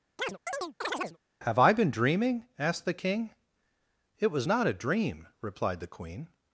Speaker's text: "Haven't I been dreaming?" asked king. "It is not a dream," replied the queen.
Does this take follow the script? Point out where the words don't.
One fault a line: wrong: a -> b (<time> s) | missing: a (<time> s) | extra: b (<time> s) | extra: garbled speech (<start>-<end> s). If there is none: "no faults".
wrong: Haven't -> Have (1.4 s)
extra: the (2.8 s)
wrong: is -> was (4.3 s)